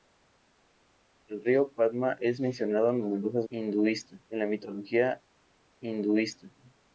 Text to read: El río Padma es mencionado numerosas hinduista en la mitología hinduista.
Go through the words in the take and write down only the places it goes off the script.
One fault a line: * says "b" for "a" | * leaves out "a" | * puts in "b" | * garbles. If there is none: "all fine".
all fine